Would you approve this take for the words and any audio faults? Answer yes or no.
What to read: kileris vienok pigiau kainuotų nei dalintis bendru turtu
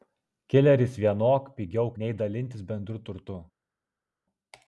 no